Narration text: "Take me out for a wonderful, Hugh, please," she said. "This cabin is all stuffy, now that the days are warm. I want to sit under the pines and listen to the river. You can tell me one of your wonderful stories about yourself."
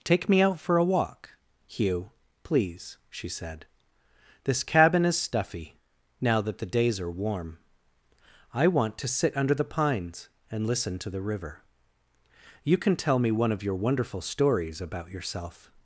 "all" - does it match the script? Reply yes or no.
no